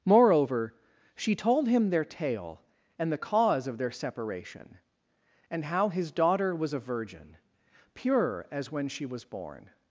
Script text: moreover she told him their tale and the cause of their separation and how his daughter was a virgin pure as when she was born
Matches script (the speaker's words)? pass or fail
pass